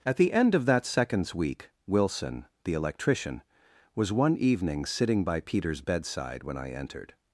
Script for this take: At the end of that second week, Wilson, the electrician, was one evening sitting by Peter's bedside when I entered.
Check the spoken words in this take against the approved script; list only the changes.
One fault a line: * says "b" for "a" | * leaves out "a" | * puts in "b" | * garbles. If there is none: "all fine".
* says "seconds" for "second"